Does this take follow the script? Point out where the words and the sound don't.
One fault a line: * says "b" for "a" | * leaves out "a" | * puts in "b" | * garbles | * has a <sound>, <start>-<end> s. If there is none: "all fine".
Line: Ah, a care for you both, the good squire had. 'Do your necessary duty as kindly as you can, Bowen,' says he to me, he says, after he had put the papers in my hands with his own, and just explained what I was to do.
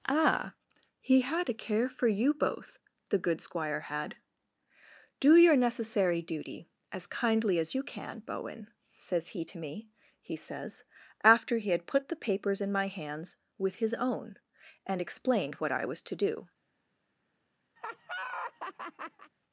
* puts in "he had"
* leaves out "just"
* has a laugh, 17.8-19.3 s